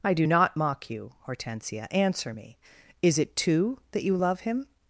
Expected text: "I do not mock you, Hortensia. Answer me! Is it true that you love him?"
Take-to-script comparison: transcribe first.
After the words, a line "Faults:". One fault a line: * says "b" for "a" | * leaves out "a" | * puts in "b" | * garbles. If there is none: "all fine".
"I do not mock you, Hortensia. Answer me! Is it two that you love him?"
Faults:
* says "two" for "true"